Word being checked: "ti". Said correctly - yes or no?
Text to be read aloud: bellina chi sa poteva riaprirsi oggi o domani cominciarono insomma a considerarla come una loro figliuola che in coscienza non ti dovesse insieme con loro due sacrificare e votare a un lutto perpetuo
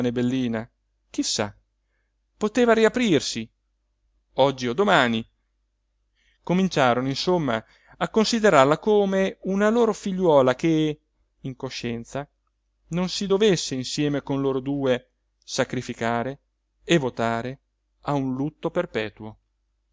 no